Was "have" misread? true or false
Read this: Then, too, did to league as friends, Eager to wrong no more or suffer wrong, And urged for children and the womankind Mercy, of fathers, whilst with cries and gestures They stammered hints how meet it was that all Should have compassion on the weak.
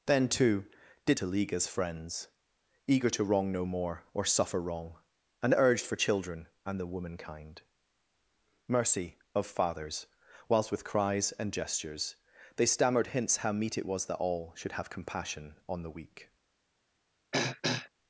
false